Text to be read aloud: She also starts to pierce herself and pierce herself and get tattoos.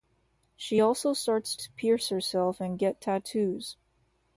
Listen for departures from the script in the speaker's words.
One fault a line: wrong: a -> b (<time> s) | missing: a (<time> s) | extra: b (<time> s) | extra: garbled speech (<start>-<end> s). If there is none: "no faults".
missing: pierce herself and (2.8 s)